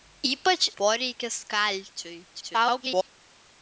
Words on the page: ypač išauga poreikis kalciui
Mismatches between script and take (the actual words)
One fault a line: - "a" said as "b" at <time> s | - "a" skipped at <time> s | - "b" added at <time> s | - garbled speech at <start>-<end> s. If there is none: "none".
- "išauga" skipped at 0.6 s
- garbled speech at 2.3-3.1 s